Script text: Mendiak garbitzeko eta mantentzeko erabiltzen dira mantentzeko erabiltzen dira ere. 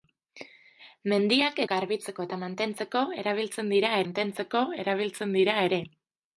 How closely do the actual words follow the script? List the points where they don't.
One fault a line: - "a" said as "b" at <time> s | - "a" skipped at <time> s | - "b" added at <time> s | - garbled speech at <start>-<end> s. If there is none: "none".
none